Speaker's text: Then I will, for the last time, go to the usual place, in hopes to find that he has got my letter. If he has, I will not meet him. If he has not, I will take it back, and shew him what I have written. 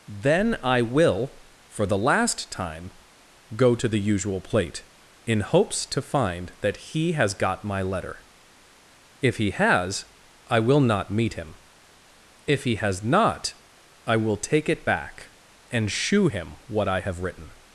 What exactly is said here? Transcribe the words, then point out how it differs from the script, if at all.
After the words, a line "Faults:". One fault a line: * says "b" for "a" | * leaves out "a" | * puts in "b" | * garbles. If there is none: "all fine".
Then I will, for the last time, go to the usual plate, in hopes to find that he has got my letter. If he has, I will not meet him. If he has not, I will take it back, and shew him what I have written.
Faults:
* says "plate" for "place"